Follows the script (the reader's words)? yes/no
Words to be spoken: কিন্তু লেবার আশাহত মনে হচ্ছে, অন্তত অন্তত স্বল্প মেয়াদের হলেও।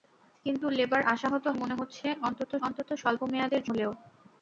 yes